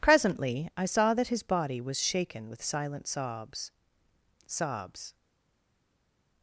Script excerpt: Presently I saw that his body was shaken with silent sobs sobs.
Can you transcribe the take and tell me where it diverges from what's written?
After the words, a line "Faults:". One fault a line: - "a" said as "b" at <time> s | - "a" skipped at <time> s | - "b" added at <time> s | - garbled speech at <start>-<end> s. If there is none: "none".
Presently I saw that his body was shaken with silent sobs sobs.
Faults:
none